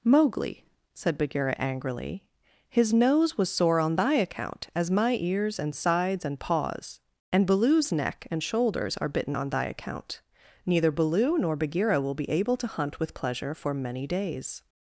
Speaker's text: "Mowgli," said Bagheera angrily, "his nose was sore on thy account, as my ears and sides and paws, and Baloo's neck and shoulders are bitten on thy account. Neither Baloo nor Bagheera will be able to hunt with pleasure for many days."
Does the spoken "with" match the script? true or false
true